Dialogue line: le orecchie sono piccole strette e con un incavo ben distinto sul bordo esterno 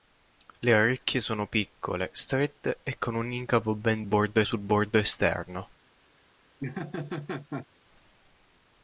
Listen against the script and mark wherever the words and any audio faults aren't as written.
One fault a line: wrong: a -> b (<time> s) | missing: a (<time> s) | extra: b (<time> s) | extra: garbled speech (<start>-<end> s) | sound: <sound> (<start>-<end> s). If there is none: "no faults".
wrong: distinto -> bordo (4.0 s)
sound: laugh (6.6-7.7 s)